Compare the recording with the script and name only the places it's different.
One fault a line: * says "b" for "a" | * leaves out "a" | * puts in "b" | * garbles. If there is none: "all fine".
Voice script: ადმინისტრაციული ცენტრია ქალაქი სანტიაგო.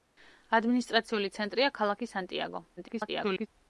* garbles